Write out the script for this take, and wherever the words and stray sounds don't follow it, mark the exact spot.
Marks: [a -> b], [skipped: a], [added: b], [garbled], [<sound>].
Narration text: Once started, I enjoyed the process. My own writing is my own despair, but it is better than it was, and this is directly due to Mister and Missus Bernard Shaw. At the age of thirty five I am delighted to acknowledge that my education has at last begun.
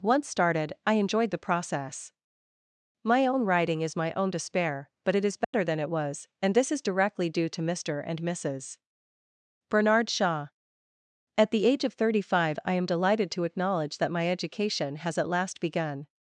Once started, I enjoyed the process. My own writing is my own despair, but it is better [dropout] than it was, and this is directly due to Mister and Missus Bernard Shaw. At the age of thirty five I am delighted to acknowledge that my education has at last begun.